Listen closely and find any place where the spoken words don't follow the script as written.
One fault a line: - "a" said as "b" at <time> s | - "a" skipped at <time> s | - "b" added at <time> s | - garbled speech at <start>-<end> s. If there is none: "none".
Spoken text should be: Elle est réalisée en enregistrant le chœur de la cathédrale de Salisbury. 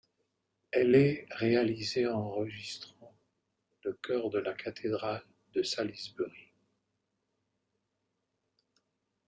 none